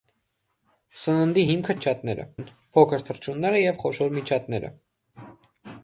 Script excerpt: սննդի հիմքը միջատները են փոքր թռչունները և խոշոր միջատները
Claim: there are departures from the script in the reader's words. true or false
false